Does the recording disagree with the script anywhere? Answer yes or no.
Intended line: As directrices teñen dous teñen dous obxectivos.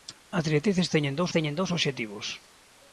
no